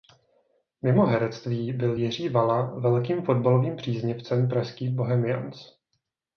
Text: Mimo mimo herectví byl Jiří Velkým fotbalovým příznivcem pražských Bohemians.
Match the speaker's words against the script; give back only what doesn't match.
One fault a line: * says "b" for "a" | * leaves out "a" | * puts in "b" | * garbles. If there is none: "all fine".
* leaves out "mimo"
* puts in "Vala"